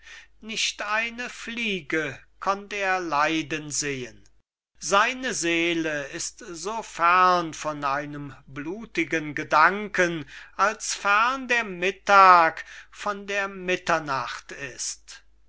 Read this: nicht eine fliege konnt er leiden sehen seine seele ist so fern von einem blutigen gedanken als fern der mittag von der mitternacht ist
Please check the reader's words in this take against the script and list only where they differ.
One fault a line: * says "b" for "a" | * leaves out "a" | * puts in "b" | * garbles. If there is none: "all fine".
all fine